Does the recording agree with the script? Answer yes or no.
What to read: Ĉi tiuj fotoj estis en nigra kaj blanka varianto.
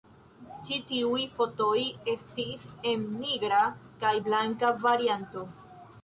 yes